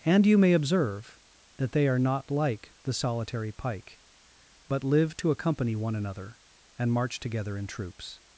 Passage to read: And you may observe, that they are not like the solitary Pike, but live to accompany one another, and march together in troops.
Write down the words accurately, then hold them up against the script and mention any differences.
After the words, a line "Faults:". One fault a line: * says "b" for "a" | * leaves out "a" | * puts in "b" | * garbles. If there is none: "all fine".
And you may observe, that they are not like the solitary Pike, but live to accompany one another, and march together in troops.
Faults:
all fine